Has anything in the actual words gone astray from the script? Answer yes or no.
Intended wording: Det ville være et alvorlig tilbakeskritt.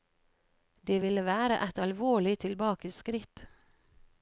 no